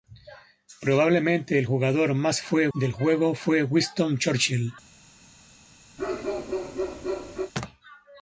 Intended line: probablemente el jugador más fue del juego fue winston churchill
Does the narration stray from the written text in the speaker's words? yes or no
no